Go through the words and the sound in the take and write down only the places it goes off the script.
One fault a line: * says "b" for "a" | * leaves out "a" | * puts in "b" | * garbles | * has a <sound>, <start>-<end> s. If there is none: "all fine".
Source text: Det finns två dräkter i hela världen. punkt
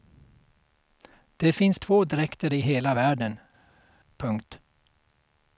all fine